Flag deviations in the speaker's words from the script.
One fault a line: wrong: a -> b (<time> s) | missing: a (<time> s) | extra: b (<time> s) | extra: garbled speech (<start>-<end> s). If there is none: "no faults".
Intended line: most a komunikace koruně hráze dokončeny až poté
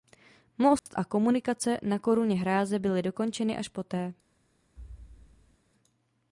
extra: na (1.8 s)
extra: byly (2.8 s)